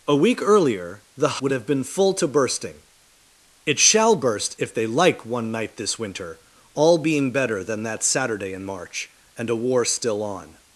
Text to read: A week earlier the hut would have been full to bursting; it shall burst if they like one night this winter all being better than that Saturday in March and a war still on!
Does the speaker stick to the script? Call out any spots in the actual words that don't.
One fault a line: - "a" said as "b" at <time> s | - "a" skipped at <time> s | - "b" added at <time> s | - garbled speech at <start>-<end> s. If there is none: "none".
- "hut" skipped at 1.4 s